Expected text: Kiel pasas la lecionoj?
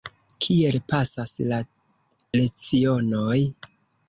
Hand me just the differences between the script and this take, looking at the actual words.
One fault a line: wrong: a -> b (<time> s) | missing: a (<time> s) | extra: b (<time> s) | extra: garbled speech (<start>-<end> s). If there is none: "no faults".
no faults